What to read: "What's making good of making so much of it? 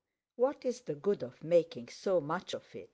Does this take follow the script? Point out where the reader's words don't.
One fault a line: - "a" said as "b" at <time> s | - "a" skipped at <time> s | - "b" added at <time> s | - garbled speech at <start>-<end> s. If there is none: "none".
- "making" said as "the" at 0.8 s